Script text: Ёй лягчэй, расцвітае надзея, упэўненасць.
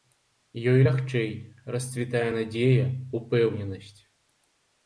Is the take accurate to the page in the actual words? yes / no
yes